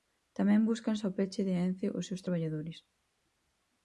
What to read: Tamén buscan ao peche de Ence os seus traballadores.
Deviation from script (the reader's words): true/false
false